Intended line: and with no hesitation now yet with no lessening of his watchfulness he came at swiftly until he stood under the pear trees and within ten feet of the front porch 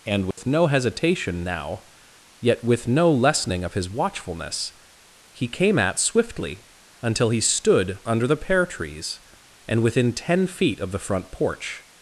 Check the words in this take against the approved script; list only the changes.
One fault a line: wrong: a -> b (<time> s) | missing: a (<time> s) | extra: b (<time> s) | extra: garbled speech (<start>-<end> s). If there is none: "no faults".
no faults